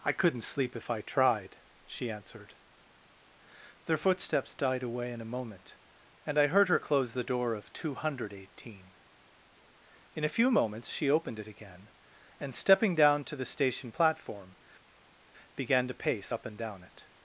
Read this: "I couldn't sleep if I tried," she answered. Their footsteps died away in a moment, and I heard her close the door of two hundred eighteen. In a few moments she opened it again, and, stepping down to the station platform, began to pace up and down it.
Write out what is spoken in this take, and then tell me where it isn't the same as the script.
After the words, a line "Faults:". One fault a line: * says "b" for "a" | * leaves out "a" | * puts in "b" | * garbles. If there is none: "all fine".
"I couldn't sleep if I tried," she answered. Their footsteps died away in a moment, and I heard her close the door of two hundred eighteen. In a few moments she opened it again, and, stepping down to the station platform, began to pace up and down it.
Faults:
all fine